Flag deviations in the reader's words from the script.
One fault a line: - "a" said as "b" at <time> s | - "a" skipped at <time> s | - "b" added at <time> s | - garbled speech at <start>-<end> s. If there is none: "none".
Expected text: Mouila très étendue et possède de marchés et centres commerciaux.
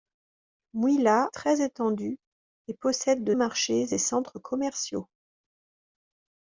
none